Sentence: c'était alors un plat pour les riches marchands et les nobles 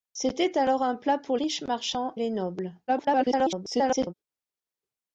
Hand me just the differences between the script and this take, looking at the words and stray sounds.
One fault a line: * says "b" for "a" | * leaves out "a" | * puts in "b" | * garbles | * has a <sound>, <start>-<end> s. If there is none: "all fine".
* leaves out "les"
* leaves out "et"
* garbles